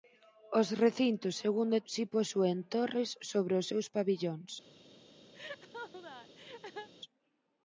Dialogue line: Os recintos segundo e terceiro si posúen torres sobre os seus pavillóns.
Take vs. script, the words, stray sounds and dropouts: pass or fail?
fail